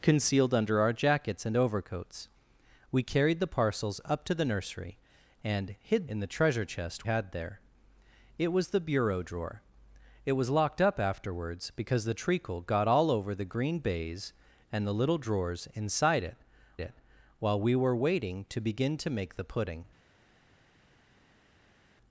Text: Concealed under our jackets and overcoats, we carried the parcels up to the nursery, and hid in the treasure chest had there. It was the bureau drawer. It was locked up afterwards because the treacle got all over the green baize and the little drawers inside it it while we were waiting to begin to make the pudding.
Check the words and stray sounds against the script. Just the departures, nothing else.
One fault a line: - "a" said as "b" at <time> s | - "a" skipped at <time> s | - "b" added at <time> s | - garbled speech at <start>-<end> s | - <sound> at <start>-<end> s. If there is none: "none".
none